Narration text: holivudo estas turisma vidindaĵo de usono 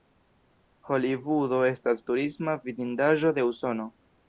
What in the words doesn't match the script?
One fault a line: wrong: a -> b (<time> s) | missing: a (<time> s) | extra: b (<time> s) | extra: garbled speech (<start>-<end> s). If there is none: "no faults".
no faults